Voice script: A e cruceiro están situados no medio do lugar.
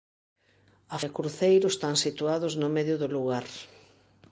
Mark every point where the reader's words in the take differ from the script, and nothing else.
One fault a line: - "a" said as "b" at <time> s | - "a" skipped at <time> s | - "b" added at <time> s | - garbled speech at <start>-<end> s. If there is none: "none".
none